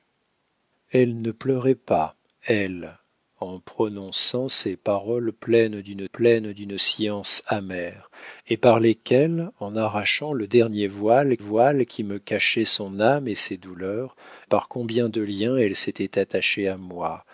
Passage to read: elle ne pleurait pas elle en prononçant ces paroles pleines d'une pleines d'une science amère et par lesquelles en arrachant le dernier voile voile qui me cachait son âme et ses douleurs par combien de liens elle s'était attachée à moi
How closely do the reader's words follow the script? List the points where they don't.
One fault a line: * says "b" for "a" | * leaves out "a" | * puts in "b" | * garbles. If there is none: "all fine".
all fine